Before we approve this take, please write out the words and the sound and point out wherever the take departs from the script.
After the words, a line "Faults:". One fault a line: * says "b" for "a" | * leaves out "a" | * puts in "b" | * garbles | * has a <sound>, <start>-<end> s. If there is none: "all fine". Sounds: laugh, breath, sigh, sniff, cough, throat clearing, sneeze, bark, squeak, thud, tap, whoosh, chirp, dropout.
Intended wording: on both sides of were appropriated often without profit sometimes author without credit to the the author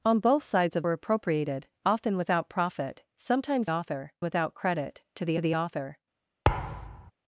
on both sides of were appropriated often without profit sometimes author without credit to the the author
Faults:
* has a thud, 6.4-7.1 s